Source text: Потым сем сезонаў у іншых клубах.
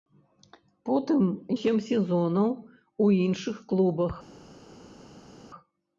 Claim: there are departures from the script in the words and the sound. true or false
false